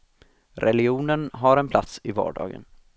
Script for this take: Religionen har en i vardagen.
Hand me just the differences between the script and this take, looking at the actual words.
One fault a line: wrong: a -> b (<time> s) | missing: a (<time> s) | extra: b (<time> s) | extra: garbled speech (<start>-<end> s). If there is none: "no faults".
extra: plats (1.7 s)